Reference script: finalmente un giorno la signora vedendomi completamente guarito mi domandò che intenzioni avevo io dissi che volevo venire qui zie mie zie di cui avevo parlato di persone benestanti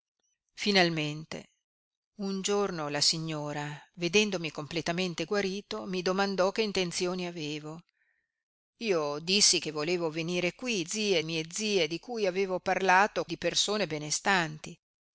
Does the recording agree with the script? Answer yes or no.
yes